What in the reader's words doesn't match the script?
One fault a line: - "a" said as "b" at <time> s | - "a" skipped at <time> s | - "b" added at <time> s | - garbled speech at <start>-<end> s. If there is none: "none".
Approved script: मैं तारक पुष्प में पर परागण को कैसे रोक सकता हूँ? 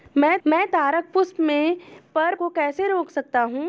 - "मैं" added at 0.5 s
- "परागण" skipped at 2.3 s